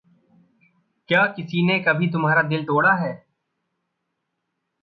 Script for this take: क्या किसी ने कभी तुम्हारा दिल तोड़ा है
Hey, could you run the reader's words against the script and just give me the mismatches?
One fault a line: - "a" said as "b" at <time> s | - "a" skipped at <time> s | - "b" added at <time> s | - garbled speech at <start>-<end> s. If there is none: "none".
none